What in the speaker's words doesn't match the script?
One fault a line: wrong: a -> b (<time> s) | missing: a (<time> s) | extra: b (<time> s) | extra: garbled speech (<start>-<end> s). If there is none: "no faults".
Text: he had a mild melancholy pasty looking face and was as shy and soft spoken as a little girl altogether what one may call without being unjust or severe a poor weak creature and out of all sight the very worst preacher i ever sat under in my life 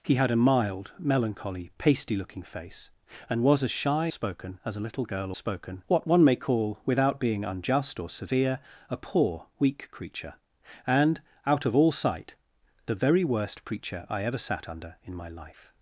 missing: and soft (4.1 s)
wrong: altogether -> spoken (5.4 s)